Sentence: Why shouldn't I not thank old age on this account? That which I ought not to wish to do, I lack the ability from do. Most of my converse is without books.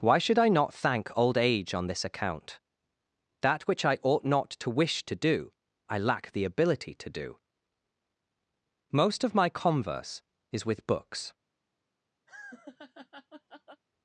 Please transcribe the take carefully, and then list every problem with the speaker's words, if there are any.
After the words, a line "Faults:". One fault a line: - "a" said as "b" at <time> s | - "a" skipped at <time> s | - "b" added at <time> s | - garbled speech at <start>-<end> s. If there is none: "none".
Why should I not thank old age on this account? That which I ought not to wish to do, I lack the ability to do. Most of my converse is with books.
Faults:
- "shouldn't" said as "should" at 0.2 s
- "from" said as "to" at 7.0 s
- "without" said as "with" at 10.7 s